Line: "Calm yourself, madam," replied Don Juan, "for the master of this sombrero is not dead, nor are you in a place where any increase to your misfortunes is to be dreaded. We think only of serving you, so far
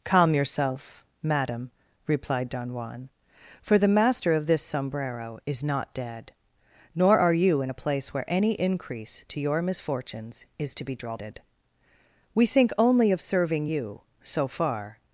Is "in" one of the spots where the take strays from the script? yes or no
no